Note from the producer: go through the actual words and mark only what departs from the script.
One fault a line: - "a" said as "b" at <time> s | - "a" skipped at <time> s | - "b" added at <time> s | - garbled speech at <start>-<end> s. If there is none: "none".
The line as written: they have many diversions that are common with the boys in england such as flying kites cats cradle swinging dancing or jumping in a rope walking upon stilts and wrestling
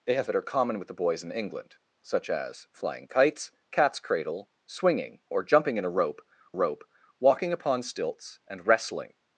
- "many diversions" skipped at 0.3 s
- "dancing" skipped at 5.2 s
- "rope" added at 6.5 s